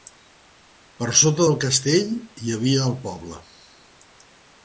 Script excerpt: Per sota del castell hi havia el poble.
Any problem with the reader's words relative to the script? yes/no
no